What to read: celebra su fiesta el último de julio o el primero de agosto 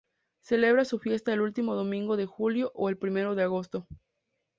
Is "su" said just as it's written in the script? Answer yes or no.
yes